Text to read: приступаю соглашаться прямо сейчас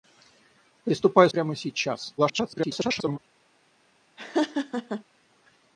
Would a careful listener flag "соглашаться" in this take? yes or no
yes